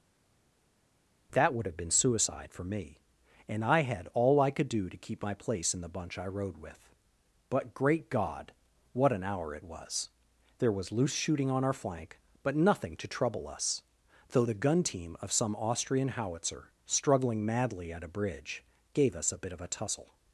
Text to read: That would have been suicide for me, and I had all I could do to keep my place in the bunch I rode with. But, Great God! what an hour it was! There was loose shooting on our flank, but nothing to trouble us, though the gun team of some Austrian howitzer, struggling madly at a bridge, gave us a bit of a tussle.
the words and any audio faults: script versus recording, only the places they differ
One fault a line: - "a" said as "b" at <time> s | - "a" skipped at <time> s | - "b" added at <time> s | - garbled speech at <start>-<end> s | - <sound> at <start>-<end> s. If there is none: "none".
none